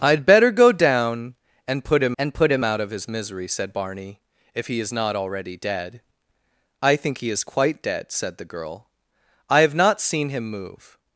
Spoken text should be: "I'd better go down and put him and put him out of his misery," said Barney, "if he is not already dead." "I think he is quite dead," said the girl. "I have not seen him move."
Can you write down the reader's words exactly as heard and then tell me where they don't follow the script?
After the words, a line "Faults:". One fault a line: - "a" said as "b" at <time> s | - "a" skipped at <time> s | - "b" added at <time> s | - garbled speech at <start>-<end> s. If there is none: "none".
"I'd better go down and put him and put him out of his misery," said Barney, "if he is not already dead." "I think he is quite dead," said the girl. "I have not seen him move."
Faults:
none